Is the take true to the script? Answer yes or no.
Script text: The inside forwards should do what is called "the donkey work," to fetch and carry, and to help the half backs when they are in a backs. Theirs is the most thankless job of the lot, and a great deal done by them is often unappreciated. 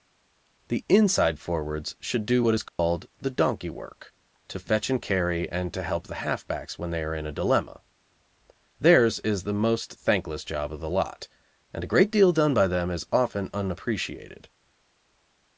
no